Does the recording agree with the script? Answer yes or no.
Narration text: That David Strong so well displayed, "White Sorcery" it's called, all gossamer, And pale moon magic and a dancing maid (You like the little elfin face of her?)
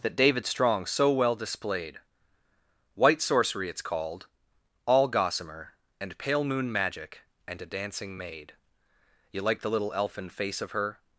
yes